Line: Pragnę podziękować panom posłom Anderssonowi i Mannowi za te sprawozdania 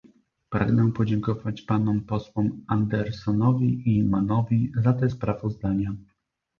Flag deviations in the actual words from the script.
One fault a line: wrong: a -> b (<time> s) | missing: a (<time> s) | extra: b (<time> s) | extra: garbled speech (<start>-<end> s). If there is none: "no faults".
no faults